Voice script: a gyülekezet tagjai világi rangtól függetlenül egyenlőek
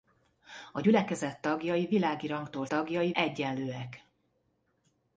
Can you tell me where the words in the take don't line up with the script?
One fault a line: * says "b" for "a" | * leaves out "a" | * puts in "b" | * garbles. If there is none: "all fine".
* says "tagjai" for "függetlenül"